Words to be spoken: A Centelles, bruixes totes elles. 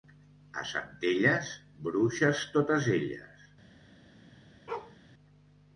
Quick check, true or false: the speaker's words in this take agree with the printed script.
true